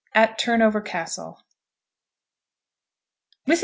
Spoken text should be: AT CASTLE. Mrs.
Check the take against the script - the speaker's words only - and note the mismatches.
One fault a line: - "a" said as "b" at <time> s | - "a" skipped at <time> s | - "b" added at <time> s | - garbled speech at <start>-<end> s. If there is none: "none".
- "TURNOVER" added at 0.4 s